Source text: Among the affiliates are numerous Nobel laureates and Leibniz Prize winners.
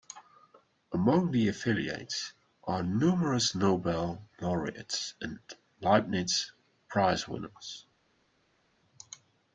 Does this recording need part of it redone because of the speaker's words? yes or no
no